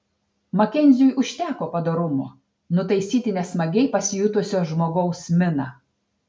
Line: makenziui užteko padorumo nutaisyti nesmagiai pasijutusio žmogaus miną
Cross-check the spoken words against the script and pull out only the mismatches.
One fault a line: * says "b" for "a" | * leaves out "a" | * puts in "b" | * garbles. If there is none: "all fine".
all fine